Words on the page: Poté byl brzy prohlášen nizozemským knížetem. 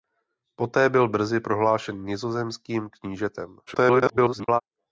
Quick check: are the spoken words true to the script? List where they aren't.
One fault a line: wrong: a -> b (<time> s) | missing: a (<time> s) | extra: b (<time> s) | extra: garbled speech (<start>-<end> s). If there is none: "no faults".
extra: garbled speech (3.7-4.6 s)